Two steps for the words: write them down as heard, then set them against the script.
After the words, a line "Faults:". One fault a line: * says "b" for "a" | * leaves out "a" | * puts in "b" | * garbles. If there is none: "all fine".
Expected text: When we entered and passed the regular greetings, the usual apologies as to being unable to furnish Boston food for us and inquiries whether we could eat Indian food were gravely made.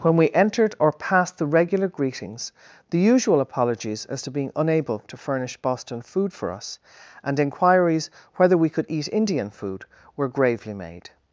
When we entered or passed the regular greetings, the usual apologies as to being unable to furnish Boston food for us and inquiries whether we could eat Indian food were gravely made.
Faults:
* says "or" for "and"